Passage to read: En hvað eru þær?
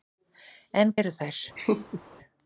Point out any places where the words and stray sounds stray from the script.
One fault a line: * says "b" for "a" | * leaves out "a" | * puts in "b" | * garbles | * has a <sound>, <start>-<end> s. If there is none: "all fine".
* leaves out "hvað"
* has a laugh, 1.6-2.0 s